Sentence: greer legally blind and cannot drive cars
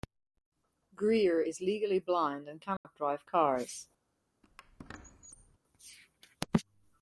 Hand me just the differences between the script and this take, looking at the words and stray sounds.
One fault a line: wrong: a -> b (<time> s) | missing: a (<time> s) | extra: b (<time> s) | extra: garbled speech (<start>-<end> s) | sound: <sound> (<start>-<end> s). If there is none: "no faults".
extra: is (1.4 s)
sound: dropout (2.8-2.8 s)
sound: squeak (4.4-5.6 s)